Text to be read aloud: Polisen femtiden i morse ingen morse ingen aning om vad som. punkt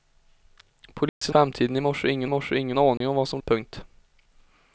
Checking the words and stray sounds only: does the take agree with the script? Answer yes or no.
no